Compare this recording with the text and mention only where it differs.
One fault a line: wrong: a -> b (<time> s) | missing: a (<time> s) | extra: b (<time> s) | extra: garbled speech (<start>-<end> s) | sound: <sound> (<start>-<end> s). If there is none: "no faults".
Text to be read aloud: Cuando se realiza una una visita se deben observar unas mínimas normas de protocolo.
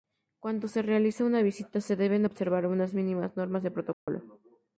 missing: una (1.4 s)
sound: dropout (3.9-4.1 s)